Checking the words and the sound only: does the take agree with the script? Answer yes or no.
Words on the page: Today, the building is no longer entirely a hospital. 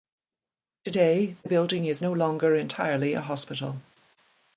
yes